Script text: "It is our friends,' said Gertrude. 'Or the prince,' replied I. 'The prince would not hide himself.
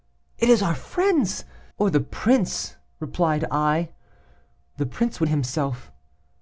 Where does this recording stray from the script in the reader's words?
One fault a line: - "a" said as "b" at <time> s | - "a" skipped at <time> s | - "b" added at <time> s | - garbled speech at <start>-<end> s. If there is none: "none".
- "said Gertrude" skipped at 1.4 s
- "not hide" skipped at 5.3 s